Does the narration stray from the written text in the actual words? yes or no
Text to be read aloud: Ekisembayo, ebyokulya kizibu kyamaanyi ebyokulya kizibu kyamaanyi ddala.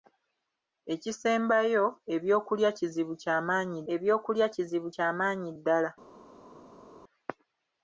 no